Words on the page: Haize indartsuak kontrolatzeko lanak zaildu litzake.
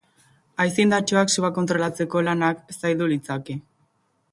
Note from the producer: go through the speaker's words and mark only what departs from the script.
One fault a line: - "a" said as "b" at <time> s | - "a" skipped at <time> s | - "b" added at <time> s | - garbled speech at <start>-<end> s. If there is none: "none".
- "sua" added at 1.4 s